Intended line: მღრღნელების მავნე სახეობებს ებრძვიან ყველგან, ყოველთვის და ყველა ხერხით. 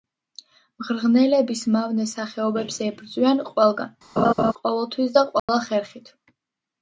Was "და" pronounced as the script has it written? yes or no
yes